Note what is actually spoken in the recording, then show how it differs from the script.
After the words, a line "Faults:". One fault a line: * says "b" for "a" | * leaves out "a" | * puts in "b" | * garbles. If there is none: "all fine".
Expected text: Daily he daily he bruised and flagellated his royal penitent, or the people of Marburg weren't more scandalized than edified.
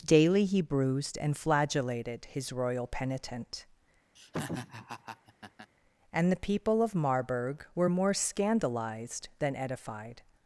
Daily he bruised and flagellated his royal penitent, and the people of Marburg were more scandalized than edified.
Faults:
* leaves out "daily he"
* says "and" for "or"
* says "were" for "weren't"